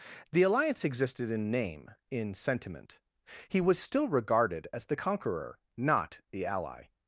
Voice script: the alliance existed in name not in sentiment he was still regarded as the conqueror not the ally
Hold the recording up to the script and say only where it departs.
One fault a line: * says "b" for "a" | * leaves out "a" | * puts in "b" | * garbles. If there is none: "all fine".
* leaves out "not"